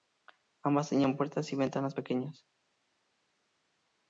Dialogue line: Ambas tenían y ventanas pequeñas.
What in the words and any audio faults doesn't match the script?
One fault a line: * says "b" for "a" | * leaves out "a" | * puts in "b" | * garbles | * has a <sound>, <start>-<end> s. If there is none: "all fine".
* puts in "puertas"